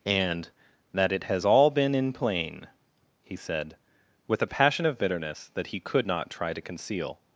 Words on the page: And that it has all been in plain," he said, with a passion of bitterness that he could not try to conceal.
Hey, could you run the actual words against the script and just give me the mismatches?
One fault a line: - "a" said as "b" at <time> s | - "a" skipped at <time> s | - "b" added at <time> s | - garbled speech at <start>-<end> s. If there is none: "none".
none